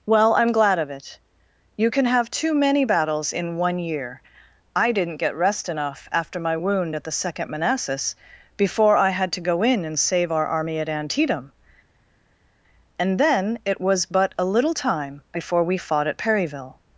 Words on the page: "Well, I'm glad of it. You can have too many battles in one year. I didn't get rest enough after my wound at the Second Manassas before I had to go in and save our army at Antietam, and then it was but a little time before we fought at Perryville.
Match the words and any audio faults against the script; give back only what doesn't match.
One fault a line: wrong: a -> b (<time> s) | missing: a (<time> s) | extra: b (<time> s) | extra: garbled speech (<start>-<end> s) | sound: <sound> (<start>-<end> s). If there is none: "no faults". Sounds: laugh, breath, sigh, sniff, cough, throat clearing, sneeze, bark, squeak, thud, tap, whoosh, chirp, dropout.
no faults